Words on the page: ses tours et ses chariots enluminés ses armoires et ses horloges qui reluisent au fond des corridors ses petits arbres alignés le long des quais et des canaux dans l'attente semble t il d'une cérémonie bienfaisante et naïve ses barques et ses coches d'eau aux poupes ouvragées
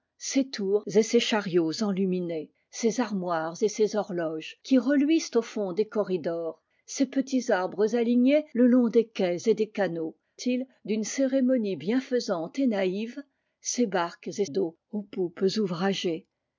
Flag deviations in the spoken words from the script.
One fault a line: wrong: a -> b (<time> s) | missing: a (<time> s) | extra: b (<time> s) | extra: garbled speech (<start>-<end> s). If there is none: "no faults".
missing: dans l'attente semble (10.2 s)
missing: ses coches (14.4 s)